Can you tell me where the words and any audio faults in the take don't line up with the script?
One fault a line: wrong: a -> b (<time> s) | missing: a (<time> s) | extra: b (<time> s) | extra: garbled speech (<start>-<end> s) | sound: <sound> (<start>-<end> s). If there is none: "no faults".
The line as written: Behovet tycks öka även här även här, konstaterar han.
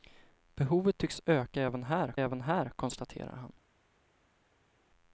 no faults